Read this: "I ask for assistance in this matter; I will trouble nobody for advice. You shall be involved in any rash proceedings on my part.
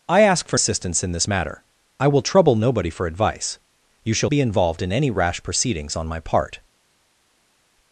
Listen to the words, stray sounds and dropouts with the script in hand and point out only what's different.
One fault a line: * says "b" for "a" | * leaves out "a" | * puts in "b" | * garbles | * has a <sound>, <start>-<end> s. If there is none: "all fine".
all fine